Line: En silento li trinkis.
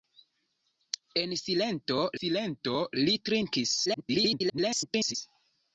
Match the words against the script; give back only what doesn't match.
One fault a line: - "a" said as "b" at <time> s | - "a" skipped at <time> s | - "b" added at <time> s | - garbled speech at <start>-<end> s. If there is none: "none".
- "silento" added at 2.2 s
- garbled speech at 3.8-5.2 s